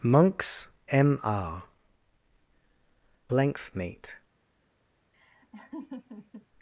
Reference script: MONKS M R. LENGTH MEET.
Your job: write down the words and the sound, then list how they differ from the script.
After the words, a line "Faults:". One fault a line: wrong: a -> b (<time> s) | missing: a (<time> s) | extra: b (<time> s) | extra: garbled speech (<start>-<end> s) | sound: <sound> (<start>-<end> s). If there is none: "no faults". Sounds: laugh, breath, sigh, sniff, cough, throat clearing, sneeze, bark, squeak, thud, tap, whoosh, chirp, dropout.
MONKS M R. LENGTH MEET.
Faults:
sound: laugh (5.1-6.5 s)